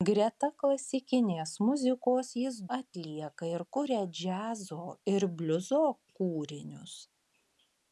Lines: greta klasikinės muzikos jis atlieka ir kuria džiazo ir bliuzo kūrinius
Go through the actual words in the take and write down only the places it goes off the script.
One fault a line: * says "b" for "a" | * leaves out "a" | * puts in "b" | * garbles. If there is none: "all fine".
all fine